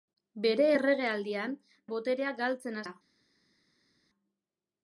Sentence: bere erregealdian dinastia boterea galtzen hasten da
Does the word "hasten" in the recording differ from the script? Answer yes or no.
yes